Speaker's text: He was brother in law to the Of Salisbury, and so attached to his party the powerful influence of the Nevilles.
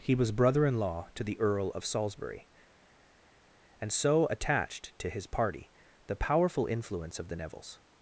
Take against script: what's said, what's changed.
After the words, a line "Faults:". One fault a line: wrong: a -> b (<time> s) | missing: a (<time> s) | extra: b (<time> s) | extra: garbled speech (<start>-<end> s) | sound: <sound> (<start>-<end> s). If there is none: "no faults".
He was brother in law to the Earl of Salisbury, and so attached to his party the powerful influence of the Nevilles.
Faults:
extra: Earl (1.4 s)